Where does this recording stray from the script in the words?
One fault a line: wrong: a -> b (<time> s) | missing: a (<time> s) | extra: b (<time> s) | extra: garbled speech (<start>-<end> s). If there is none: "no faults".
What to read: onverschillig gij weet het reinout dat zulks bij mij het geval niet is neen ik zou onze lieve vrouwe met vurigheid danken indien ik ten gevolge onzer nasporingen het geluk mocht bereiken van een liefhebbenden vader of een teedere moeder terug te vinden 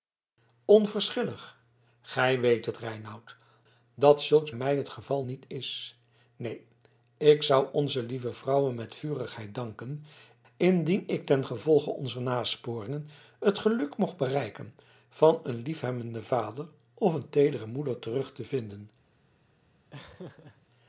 missing: bij (4.5 s)